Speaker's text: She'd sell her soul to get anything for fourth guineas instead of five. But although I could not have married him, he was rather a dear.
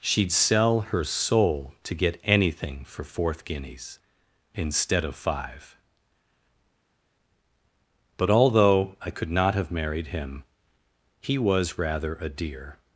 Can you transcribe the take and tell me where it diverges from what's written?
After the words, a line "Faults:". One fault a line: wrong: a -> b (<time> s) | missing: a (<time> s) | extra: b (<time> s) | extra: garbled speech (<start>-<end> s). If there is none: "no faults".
She'd sell her soul to get anything for fourth guineas instead of five. But although I could not have married him, he was rather a dear.
Faults:
no faults